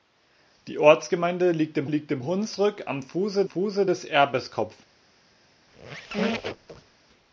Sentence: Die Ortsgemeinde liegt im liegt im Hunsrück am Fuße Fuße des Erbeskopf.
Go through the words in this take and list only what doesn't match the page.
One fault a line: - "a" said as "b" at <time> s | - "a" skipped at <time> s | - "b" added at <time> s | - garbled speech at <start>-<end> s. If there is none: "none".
none